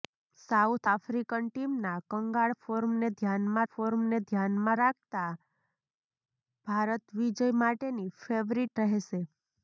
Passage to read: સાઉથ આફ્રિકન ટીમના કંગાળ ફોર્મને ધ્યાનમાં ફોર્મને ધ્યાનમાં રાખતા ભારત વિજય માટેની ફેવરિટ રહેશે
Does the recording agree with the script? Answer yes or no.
yes